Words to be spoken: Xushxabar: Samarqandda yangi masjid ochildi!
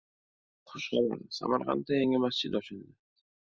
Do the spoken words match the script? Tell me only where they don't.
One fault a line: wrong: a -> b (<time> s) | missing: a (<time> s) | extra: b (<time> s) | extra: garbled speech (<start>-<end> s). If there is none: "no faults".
no faults